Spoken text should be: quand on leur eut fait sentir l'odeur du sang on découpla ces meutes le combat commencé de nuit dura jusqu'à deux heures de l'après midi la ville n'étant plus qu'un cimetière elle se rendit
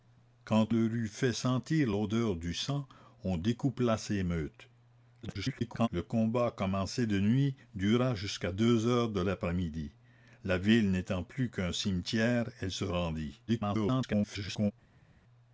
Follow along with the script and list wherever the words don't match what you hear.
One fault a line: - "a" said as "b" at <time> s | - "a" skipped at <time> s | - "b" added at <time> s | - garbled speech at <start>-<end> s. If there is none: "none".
- "on" skipped at 0.7 s
- garbled speech at 5.2-5.9 s
- garbled speech at 13.5-14.7 s